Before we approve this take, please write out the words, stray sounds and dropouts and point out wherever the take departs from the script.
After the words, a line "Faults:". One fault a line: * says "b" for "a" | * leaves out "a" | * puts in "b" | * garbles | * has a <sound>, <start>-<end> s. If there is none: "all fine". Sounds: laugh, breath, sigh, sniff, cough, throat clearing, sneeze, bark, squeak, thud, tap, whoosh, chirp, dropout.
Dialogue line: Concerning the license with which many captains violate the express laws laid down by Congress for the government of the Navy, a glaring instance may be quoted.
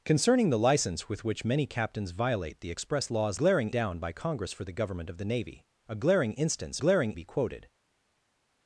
Concerning the license with which many captains violate the express laws glaring down by Congress for the government of the Navy, a glaring instance glaring be quoted.
Faults:
* says "glaring" for "laid"
* says "glaring" for "may"